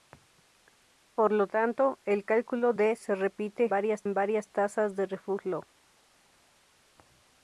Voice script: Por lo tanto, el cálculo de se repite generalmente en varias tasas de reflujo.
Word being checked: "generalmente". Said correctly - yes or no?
no